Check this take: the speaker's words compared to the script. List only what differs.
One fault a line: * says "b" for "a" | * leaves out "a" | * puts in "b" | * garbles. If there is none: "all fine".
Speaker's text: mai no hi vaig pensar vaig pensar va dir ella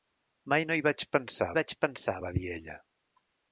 all fine